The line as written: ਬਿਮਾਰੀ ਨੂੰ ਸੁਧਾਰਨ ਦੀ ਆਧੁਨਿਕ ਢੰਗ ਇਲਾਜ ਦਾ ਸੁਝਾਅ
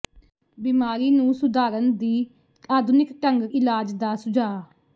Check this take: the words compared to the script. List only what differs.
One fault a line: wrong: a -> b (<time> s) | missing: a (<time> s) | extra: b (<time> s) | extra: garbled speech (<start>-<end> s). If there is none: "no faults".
no faults